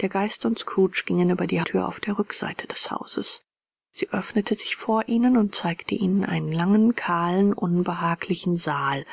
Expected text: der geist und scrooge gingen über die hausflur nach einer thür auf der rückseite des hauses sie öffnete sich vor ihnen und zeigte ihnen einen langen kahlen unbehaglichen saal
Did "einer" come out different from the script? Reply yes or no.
yes